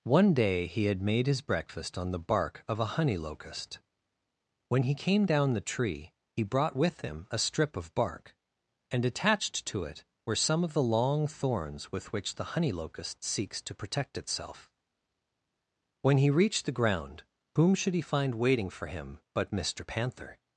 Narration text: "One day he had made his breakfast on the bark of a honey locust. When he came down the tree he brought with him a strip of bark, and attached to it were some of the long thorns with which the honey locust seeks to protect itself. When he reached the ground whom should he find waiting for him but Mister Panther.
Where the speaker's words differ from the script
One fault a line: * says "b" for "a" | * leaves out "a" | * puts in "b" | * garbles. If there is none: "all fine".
all fine